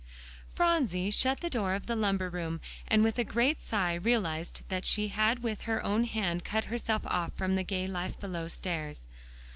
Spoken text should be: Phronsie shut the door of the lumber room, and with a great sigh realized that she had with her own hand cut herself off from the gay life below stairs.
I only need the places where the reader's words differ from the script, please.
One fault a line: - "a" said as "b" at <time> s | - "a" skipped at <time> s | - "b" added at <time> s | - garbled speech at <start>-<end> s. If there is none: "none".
none